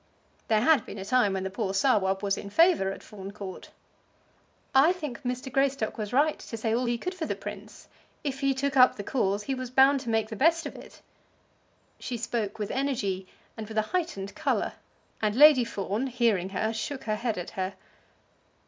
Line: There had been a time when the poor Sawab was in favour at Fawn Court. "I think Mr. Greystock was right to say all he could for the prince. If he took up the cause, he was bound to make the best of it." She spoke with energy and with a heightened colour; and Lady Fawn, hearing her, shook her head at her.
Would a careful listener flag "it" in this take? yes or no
no